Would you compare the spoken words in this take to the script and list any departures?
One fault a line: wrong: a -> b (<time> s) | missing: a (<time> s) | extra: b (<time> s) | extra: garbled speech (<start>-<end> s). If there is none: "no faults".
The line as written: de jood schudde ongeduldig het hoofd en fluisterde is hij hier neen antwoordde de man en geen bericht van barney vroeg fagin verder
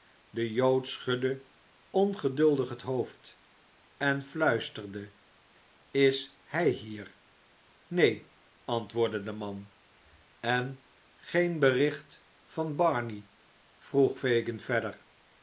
no faults